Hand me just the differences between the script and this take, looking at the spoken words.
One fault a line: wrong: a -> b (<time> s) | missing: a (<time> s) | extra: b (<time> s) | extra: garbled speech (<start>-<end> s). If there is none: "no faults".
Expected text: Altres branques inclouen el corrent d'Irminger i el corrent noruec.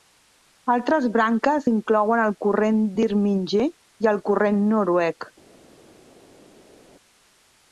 no faults